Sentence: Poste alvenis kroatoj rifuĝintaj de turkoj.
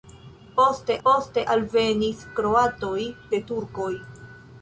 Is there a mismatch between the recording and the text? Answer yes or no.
yes